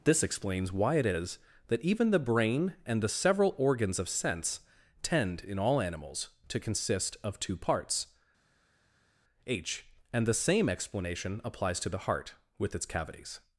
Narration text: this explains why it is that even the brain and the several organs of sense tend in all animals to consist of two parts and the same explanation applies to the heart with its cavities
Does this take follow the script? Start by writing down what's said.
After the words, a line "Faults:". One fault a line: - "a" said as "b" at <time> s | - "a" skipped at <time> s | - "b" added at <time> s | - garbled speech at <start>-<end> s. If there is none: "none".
this explains why it is that even the brain and the several organs of sense tend in all animals to consist of two parts h and the same explanation applies to the heart with its cavities
Faults:
- "h" added at 9.5 s